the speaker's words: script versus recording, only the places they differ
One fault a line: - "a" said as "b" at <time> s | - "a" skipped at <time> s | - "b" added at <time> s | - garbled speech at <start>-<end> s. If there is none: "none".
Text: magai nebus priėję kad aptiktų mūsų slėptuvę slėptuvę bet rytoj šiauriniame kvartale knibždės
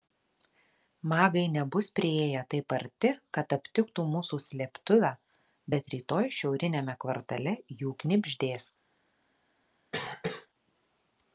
- "taip arti" added at 2.5 s
- "slėptuvę" skipped at 5.1 s
- "jų" added at 7.8 s